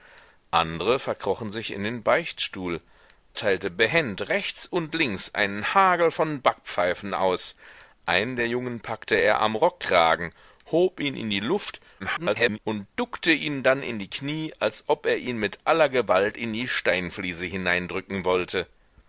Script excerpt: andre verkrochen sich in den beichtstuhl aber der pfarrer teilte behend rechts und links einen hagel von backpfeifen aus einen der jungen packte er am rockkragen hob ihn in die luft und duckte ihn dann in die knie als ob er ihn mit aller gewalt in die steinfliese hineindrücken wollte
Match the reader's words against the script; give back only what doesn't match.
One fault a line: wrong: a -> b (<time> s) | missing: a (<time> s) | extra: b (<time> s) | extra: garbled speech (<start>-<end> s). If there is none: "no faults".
missing: aber der pfarrer (2.8 s)
extra: garbled speech (12.0-12.6 s)